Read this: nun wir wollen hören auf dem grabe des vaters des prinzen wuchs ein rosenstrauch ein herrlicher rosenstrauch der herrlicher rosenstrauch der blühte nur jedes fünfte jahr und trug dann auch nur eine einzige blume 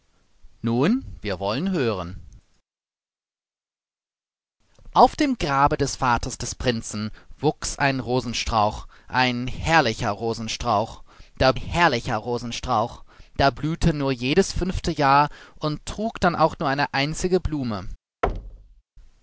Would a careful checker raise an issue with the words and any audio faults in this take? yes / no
yes